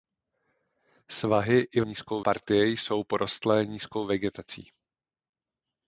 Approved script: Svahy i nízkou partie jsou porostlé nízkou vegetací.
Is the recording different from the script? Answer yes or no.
no